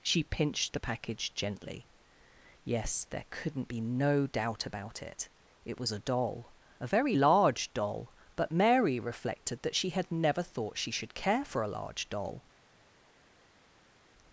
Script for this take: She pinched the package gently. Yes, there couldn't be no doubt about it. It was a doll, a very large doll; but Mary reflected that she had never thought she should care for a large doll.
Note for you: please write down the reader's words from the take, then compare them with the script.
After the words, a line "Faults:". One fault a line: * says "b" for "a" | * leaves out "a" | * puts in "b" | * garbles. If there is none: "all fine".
She pinched the package gently. Yes, there couldn't be no doubt about it. It was a doll, a very large doll; but Mary reflected that she had never thought she should care for a large doll.
Faults:
all fine